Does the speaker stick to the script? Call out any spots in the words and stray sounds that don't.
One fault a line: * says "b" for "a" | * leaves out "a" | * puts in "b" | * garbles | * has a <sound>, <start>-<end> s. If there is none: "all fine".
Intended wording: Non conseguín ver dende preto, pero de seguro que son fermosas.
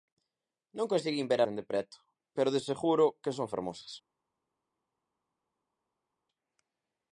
all fine